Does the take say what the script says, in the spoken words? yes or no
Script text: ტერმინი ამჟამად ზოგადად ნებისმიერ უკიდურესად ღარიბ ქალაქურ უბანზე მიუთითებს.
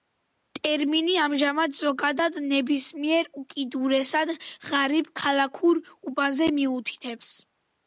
yes